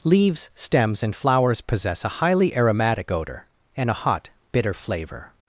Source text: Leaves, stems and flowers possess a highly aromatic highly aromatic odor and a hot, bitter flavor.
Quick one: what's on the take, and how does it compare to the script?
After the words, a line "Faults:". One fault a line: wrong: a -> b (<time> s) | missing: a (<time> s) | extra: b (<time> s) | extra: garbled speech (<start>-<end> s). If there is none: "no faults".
Leaves, stems and flowers possess a highly aromatic odor and a hot, bitter flavor.
Faults:
missing: highly aromatic (3.1 s)